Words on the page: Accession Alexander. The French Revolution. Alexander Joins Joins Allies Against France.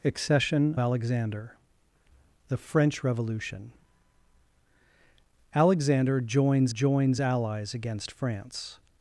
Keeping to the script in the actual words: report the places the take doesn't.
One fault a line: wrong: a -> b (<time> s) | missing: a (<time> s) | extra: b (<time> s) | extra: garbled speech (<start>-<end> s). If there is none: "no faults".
no faults